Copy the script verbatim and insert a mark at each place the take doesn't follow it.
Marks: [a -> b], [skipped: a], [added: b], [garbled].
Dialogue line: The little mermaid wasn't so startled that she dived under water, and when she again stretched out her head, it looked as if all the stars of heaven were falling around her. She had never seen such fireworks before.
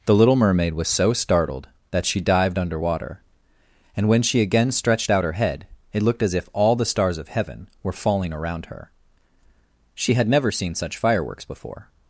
The little mermaid [wasn't -> was] so startled that she dived under water, and when she again stretched out her head, it looked as if all the stars of heaven were falling around her. She had never seen such fireworks before.